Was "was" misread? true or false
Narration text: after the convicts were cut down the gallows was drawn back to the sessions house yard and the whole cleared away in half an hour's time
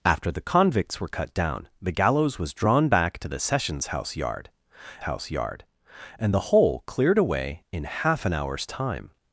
false